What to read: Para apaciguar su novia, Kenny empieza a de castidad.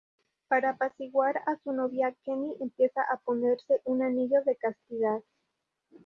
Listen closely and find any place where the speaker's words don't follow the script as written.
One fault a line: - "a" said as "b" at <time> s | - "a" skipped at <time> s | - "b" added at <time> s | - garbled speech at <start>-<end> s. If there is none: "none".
- "a" added at 1.5 s
- "ponerse un anillo" added at 3.2 s